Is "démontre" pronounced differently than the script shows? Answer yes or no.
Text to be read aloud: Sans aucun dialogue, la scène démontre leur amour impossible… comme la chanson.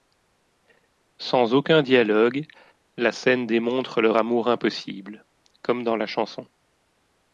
no